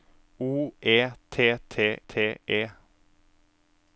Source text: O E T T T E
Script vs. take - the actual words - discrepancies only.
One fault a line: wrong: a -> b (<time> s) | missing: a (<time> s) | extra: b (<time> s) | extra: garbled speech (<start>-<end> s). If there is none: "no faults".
no faults